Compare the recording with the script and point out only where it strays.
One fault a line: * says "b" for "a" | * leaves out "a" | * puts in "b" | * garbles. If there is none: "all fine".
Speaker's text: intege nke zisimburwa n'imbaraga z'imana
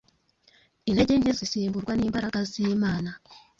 all fine